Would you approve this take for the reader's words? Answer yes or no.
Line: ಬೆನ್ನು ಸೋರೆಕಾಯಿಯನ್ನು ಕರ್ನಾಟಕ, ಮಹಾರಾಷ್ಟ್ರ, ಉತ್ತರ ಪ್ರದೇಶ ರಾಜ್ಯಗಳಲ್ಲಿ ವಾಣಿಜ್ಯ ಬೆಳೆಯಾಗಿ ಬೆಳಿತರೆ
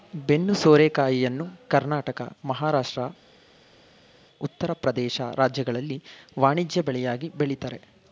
yes